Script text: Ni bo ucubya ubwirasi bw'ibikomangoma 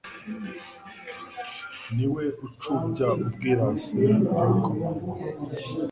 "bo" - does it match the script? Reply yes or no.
no